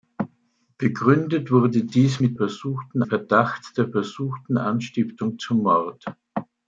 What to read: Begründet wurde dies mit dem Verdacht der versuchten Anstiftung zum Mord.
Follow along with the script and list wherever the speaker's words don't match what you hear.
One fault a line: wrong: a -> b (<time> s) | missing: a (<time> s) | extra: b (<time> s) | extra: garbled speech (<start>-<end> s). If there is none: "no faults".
wrong: dem -> versuchten (2.3 s)